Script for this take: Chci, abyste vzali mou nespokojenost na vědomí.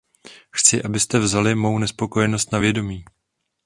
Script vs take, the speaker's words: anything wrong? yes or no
no